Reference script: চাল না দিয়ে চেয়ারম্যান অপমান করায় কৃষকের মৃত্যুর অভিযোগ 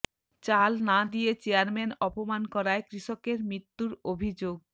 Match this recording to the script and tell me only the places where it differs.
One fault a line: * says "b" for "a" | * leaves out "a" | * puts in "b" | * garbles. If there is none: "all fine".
all fine